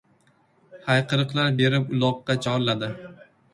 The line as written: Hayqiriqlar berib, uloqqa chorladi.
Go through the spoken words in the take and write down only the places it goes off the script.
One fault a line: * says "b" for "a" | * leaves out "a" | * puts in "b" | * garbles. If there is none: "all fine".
all fine